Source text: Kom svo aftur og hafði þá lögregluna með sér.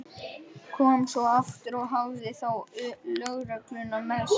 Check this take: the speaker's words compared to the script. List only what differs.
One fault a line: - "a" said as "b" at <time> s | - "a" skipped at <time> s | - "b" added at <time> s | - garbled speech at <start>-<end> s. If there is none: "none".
none